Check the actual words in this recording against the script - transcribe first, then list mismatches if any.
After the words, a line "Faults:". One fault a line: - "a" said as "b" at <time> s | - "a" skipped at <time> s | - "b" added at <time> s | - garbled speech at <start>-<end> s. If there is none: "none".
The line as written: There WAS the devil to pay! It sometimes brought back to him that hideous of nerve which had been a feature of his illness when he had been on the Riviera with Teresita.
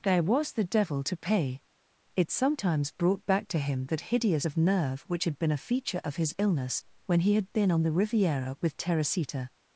There WAS the devil to pay! It sometimes brought back to him that hideous of nerve which had been a feature of his illness when he had been on the Riviera with Teresita.
Faults:
none